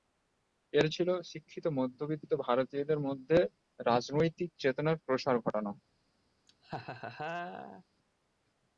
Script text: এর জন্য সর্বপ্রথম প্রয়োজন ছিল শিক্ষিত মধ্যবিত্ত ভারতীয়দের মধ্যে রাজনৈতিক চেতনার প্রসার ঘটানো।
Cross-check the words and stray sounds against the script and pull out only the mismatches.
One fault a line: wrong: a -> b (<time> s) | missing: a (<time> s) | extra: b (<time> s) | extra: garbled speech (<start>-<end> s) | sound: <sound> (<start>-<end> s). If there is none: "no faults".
missing: জন্য সর্বপ্রথম প্রয়োজন (0.9 s)
sound: laugh (6.5-7.8 s)